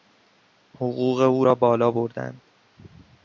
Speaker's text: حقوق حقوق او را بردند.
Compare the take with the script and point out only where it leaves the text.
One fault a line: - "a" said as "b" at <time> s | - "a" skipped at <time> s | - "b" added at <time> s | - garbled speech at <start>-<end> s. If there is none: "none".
- "حقوق" skipped at 1.2 s
- "بالا" added at 1.6 s